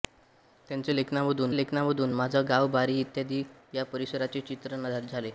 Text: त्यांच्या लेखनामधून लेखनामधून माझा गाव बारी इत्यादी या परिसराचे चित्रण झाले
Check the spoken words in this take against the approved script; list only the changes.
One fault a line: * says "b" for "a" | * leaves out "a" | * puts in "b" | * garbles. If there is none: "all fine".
all fine